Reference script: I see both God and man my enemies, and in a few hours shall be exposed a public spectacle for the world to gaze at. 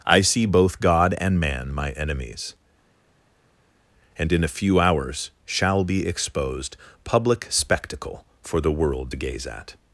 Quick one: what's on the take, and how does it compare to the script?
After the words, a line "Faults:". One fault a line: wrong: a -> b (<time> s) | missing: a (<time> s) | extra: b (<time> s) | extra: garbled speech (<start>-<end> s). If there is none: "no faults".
I see both God and man my enemies, and in a few hours shall be exposed public spectacle for the world to gaze at.
Faults:
missing: a (6.8 s)